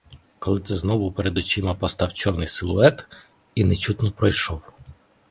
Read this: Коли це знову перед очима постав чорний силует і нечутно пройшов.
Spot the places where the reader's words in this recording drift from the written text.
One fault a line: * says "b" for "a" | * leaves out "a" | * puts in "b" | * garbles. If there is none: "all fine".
all fine